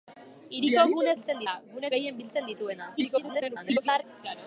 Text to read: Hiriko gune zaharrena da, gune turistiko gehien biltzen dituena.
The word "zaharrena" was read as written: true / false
false